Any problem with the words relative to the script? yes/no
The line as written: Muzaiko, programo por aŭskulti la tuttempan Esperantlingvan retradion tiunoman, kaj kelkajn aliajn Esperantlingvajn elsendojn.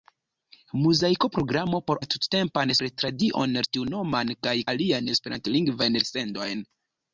yes